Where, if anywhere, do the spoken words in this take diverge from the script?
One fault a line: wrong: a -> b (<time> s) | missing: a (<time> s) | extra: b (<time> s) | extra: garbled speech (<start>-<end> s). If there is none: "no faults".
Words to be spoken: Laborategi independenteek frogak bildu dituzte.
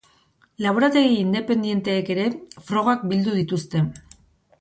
extra: ere (2.1 s)